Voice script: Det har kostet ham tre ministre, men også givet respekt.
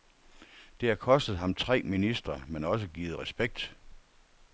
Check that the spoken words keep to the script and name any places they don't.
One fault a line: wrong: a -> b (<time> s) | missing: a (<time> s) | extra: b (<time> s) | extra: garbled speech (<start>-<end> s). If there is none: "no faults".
no faults